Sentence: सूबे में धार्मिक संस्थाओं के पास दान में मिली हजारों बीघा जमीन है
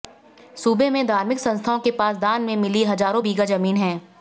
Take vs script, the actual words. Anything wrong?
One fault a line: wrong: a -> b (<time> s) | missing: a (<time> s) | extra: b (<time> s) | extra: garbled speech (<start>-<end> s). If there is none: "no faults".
no faults